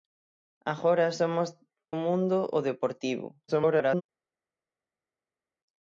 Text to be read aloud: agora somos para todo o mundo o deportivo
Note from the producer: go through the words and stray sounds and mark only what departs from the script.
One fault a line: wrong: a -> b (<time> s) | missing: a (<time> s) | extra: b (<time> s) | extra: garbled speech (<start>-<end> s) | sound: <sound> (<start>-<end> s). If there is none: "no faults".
missing: para todo (1.5 s)
extra: garbled speech (3.5-4.0 s)